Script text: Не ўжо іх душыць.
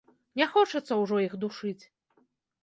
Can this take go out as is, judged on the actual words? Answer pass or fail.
fail